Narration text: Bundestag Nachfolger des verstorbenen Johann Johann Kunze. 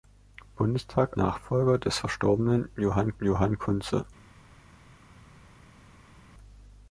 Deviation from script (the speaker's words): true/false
false